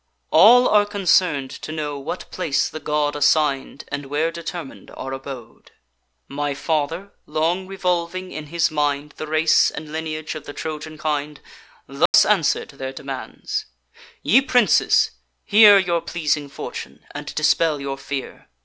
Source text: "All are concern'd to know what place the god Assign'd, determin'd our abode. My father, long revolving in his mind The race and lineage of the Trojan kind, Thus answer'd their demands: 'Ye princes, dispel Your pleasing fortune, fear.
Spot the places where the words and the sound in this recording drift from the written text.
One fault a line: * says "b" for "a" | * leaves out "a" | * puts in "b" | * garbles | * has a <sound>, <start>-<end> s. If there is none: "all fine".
* puts in "and where"
* has a dropout, 12.1-12.1 s
* says "hear" for "dispel"
* puts in "and dispel your"